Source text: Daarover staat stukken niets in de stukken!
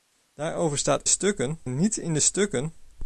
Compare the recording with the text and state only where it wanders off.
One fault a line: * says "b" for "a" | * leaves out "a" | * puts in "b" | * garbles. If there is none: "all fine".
all fine